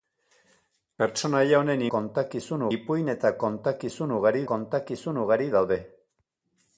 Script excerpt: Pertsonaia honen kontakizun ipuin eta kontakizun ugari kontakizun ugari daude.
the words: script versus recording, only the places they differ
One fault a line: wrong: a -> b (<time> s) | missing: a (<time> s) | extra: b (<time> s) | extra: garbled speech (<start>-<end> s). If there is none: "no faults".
no faults